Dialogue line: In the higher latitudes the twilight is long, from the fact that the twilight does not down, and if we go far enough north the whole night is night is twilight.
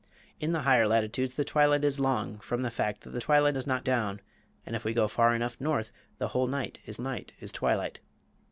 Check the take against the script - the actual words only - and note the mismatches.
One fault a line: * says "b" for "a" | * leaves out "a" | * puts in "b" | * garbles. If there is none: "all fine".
all fine